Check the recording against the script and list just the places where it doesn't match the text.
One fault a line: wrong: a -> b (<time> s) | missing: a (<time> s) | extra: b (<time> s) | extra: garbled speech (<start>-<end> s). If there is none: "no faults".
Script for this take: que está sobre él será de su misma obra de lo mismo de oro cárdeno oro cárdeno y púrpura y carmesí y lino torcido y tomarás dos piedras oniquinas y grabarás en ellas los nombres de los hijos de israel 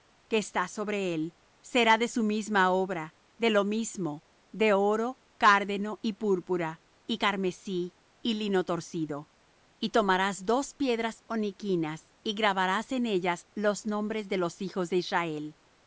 missing: oro cárdeno (6.0 s)